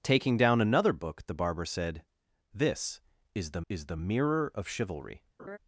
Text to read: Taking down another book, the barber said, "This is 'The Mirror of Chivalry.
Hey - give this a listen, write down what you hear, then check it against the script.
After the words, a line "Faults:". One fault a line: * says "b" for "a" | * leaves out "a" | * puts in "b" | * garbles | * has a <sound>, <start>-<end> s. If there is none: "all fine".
Taking down another book, the barber said, "This is 'The is The Mirror of Chivalry.
Faults:
* puts in "is The"
* has a laugh, 5.4-5.6 s